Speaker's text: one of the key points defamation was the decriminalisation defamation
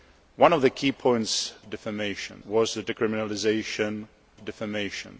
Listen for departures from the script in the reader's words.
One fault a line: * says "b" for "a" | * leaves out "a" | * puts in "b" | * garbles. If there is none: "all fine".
all fine